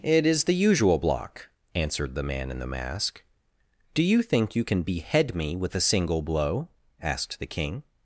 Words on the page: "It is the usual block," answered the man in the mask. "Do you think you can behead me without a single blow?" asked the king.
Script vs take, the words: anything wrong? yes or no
yes